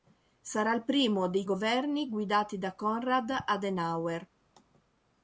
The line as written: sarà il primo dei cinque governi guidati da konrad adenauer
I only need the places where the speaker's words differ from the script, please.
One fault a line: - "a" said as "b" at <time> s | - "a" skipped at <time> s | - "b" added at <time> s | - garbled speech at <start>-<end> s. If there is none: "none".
- "cinque" skipped at 1.4 s